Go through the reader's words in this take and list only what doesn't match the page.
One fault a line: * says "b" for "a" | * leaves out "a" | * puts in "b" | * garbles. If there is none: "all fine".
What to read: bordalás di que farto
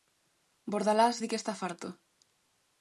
* puts in "está"